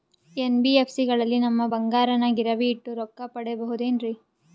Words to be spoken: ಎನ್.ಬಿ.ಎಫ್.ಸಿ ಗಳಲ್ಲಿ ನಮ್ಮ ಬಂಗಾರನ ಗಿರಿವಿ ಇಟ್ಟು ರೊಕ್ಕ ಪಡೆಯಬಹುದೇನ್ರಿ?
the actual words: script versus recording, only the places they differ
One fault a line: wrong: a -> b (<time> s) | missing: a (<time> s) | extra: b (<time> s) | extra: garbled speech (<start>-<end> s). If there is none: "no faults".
no faults